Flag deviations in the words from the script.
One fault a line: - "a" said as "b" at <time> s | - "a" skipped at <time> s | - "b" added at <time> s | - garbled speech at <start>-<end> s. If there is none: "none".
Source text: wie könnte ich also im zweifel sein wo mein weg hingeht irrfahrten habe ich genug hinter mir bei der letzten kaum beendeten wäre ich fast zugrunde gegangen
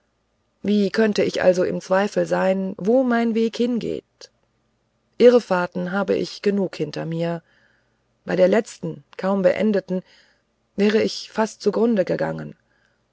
none